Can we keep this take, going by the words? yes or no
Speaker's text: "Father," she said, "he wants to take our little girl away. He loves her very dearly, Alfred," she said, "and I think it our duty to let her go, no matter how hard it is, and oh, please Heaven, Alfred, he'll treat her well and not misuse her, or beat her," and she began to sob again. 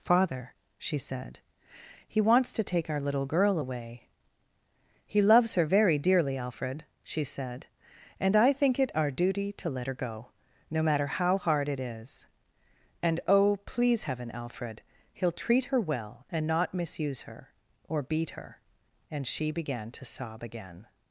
yes